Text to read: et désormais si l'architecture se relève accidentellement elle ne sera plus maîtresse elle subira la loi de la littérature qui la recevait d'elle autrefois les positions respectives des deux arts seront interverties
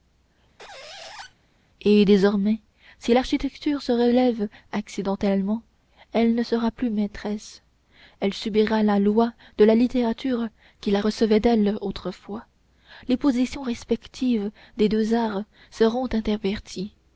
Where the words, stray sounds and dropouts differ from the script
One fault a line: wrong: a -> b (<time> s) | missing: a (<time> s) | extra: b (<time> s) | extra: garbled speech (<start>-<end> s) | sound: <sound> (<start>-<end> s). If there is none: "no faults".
sound: squeak (0.6-1.3 s)